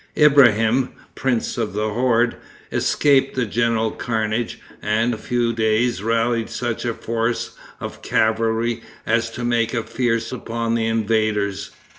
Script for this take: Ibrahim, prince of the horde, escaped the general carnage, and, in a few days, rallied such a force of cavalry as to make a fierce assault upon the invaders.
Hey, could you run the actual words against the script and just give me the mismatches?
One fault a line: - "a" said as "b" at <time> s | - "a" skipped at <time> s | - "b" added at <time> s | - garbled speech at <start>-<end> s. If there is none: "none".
- "in" skipped at 5.1 s
- "assault" skipped at 10.3 s